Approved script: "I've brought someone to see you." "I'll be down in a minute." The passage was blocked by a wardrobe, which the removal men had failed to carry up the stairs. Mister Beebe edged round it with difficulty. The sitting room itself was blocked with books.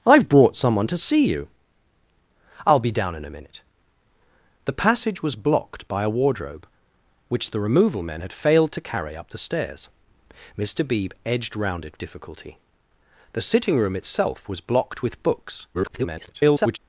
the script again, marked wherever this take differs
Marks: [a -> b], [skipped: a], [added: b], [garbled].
"I've brought someone to see you." "I'll be down in a minute." The passage was blocked by a wardrobe, which the removal men had failed to carry up the stairs. Mister Beebe edged round it [skipped: with] difficulty. The sitting room itself was blocked with books. [garbled]